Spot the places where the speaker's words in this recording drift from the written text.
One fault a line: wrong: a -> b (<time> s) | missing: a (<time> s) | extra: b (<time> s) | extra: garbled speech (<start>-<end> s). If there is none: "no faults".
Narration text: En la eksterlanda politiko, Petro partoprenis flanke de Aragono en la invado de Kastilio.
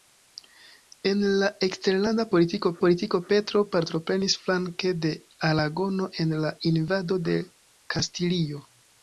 extra: politiko (2.8 s)